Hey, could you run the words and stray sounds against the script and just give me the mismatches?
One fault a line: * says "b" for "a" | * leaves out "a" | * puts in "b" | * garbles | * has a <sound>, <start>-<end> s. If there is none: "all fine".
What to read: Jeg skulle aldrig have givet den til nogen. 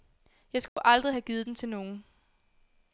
* has a dropout, 0.7-0.8 s